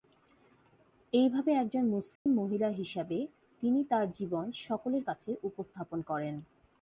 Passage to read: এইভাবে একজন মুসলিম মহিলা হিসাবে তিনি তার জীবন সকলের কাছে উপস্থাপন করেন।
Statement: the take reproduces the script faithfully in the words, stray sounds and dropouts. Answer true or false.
false